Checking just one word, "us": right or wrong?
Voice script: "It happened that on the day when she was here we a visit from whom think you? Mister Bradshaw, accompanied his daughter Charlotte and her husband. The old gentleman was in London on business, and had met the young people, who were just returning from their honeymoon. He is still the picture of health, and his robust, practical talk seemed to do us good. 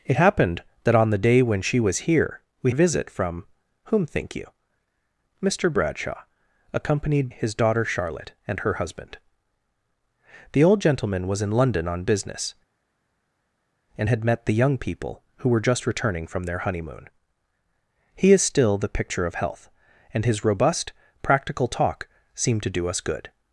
right